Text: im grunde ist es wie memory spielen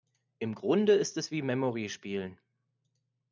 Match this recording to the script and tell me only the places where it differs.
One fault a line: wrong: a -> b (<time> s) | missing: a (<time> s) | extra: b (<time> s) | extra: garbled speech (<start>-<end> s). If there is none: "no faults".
no faults